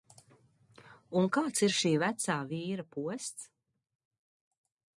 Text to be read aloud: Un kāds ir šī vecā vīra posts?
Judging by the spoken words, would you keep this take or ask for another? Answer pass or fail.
pass